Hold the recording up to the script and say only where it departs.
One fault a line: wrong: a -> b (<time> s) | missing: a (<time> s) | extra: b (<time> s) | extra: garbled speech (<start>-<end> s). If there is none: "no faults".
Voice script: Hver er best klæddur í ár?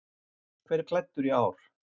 missing: best (0.9 s)